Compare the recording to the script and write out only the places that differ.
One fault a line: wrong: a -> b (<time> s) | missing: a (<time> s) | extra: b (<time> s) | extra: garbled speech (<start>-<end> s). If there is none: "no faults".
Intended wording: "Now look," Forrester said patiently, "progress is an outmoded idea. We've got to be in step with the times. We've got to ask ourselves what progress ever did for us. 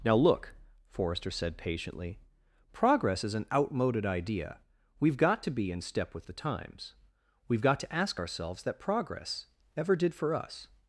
wrong: what -> that (8.6 s)